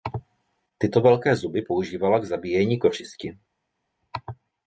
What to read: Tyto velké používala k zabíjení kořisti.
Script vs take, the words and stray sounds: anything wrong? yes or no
yes